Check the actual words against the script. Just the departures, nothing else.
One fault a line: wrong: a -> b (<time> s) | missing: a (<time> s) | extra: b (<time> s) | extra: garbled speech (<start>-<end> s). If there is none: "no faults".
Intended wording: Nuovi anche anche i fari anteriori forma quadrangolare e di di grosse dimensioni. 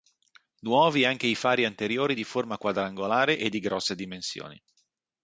missing: anche (1.3 s)
extra: di (2.1 s)
missing: di (3.6 s)